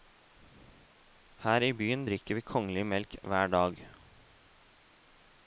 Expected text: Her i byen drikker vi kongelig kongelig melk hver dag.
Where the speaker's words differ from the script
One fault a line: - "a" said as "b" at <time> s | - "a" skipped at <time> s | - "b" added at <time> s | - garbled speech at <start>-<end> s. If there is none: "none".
- "kongelig" skipped at 2.8 s